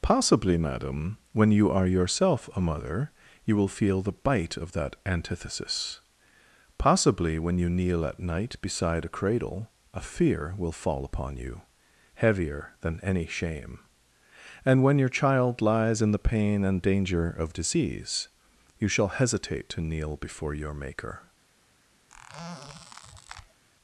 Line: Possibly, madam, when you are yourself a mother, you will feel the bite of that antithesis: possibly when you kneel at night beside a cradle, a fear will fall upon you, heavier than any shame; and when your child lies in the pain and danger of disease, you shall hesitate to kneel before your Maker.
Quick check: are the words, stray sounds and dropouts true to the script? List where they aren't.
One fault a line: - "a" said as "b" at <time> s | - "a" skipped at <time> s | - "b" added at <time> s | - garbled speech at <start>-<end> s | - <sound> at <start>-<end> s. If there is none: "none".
- squeak at 22.1-23.6 s